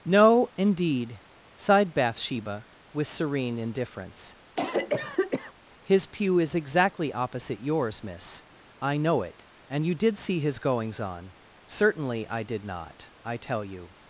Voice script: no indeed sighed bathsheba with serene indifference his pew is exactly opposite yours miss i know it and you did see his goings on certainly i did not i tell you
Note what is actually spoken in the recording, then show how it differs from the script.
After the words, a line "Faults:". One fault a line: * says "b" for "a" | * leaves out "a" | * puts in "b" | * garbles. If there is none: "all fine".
no indeed sighed bathsheba with serene indifference his pew is exactly opposite yours miss i know it and you did see his goings on certainly i did not i tell you
Faults:
all fine